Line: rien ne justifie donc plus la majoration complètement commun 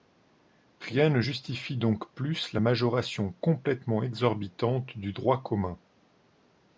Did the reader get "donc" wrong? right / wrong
right